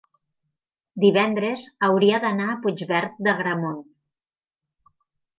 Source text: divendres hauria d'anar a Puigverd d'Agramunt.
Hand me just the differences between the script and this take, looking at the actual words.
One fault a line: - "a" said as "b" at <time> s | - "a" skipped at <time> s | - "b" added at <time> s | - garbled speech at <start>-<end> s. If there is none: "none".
none